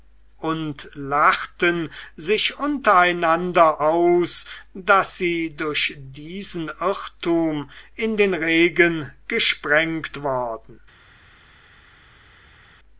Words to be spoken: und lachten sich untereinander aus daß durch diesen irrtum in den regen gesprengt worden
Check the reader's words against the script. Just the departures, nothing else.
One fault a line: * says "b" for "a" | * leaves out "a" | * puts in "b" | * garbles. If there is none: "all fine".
* puts in "sie"